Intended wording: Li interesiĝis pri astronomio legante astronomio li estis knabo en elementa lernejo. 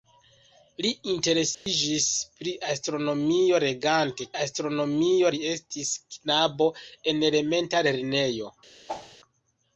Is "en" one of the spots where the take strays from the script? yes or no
no